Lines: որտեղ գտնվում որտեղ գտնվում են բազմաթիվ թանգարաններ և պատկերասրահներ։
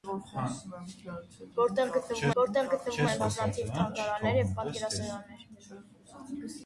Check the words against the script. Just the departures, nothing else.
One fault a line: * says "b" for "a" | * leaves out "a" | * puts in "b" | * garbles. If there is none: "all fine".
all fine